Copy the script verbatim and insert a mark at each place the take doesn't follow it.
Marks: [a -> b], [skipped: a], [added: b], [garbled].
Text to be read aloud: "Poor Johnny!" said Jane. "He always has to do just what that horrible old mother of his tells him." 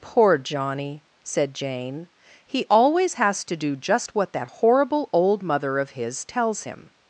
"Poor Johnny!" said Jane. "He always has to do just what that horrible old mother of his tells him."